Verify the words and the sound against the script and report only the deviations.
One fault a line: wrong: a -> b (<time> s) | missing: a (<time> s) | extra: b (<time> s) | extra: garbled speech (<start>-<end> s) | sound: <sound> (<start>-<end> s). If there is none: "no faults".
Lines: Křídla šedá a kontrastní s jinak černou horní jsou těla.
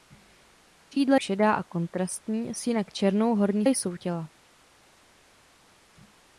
no faults